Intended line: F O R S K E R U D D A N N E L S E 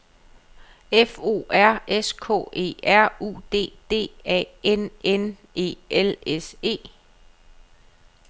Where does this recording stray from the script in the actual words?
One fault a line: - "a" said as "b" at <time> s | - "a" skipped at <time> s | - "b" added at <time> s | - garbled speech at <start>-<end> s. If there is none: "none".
none